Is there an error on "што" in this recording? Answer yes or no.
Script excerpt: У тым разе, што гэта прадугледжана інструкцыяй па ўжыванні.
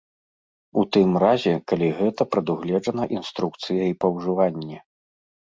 yes